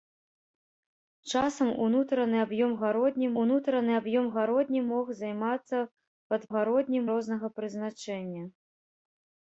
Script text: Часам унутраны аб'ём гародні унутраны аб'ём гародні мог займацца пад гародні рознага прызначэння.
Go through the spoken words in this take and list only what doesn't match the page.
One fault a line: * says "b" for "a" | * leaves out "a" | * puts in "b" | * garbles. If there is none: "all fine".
all fine